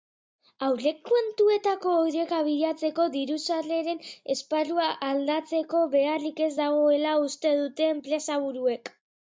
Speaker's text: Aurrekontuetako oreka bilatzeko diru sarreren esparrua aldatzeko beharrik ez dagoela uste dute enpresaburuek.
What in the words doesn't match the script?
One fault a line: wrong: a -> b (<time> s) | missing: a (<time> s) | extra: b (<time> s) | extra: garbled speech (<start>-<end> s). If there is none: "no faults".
no faults